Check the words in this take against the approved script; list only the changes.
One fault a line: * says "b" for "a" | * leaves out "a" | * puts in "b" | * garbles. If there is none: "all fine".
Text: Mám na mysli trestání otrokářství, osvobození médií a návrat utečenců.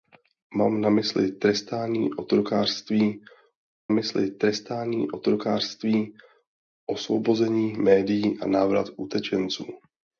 * puts in "mysli trestání otrokářství"